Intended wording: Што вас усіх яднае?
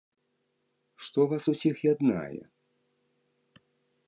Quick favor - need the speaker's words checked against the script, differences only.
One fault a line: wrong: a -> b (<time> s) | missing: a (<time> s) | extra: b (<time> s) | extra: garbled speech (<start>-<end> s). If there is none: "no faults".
no faults